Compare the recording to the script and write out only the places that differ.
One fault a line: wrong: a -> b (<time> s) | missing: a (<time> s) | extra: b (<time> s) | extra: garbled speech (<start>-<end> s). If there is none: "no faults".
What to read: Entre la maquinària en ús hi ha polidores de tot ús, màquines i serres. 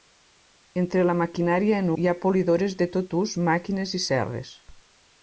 missing: ús (1.9 s)